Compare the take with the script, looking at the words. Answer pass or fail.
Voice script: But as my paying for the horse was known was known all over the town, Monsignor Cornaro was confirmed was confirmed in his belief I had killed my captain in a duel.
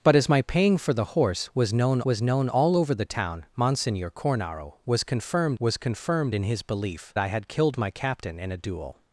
pass